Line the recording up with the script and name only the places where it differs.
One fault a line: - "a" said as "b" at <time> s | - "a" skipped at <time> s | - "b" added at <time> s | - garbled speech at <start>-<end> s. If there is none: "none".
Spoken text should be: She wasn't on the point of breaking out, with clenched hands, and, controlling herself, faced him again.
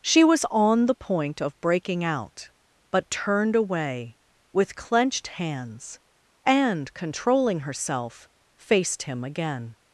- "wasn't" said as "was" at 0.2 s
- "but turned away" added at 2.9 s